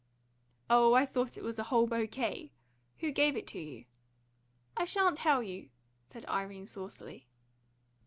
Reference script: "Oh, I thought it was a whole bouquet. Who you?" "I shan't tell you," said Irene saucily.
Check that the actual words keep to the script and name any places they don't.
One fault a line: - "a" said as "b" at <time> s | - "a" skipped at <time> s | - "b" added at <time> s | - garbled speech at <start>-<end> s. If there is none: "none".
- "gave it to" added at 3.1 s